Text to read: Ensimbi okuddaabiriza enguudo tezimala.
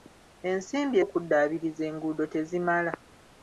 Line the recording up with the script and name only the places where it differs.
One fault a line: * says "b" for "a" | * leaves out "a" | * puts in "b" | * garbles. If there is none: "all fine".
all fine